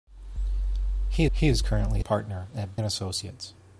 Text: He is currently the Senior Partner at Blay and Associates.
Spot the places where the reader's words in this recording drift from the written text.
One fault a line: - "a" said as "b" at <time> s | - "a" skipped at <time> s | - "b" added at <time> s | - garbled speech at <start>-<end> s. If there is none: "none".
- "he" added at 1.3 s
- "the Senior" skipped at 2.0 s
- "Blay" skipped at 2.8 s